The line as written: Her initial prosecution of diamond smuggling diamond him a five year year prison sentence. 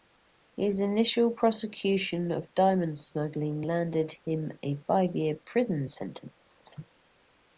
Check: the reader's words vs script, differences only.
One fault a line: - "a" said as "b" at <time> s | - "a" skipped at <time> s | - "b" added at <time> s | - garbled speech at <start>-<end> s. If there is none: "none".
- "Her" said as "His" at 0.6 s
- "diamond" said as "landed" at 3.6 s
- "year" skipped at 5.3 s